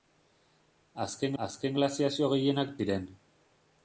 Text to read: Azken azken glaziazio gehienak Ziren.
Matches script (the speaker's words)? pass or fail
pass